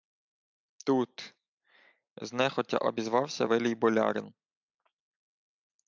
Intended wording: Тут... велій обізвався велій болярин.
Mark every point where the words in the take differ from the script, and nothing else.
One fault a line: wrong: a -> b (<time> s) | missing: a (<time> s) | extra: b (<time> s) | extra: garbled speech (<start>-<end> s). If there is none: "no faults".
wrong: велій -> знехотя (2.2 s)